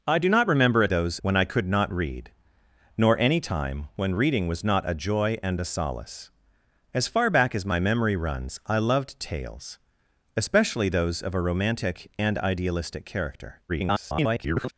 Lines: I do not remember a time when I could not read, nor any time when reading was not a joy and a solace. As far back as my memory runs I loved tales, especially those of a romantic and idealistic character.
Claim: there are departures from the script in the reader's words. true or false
true